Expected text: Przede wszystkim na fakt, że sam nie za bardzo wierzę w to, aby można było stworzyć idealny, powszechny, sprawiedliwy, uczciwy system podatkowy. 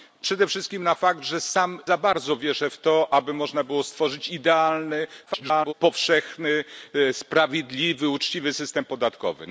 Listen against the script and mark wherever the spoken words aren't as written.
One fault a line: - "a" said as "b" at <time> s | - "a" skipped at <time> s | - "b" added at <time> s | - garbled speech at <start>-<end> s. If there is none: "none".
- "nie" skipped at 1.8 s
- garbled speech at 5.3-5.7 s